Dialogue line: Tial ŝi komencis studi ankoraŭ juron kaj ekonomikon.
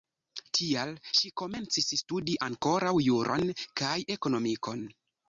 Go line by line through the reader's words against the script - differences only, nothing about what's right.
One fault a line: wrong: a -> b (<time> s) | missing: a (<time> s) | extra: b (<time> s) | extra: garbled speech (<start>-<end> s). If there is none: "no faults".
no faults